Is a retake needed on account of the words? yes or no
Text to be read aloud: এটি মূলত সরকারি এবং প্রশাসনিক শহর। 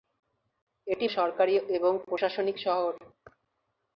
yes